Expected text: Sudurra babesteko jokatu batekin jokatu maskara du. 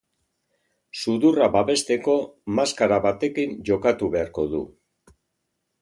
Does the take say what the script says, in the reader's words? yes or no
no